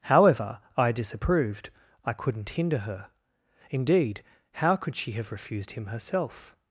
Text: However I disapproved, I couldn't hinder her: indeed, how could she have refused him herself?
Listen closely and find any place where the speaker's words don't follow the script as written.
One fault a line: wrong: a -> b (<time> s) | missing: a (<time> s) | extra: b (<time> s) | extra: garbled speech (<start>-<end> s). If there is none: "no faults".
no faults